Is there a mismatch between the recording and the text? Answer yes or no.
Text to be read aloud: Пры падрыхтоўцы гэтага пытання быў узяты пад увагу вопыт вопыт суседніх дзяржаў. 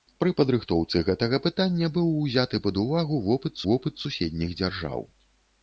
no